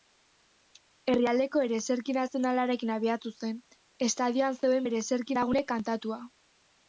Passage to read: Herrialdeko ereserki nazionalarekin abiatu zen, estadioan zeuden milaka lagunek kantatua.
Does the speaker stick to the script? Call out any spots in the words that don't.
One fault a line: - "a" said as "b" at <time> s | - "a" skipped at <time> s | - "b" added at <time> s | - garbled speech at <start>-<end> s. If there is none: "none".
- "milaka" said as "ereserki" at 4.9 s